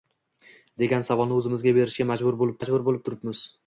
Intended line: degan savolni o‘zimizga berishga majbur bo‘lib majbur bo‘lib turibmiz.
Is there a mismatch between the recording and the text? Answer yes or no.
no